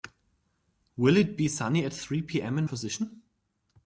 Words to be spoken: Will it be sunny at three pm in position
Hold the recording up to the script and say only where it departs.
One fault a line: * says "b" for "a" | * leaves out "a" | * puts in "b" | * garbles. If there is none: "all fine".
all fine